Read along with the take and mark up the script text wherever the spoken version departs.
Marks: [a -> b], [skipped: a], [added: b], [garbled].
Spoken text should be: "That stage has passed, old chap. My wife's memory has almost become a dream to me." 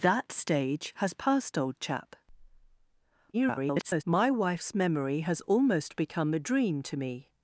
"That stage has passed, old chap. [garbled] My wife's memory has almost become a dream to me."